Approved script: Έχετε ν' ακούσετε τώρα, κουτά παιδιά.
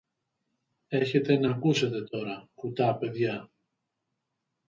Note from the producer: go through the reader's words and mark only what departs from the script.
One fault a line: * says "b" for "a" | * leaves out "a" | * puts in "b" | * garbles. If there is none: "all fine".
all fine